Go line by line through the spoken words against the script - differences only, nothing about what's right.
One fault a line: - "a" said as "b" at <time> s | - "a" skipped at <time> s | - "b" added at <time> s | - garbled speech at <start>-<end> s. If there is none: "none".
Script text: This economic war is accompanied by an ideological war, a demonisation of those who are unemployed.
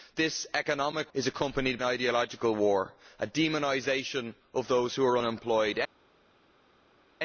- "war" skipped at 1.1 s
- "by" skipped at 1.8 s